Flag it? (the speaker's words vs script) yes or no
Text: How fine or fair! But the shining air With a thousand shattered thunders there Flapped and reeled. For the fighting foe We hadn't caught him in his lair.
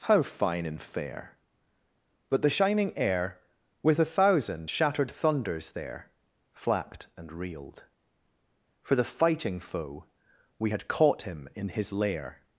yes